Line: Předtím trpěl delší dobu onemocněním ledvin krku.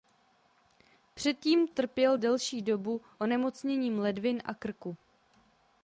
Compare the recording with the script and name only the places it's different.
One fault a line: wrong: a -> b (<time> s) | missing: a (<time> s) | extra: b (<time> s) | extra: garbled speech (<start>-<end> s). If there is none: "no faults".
extra: a (4.4 s)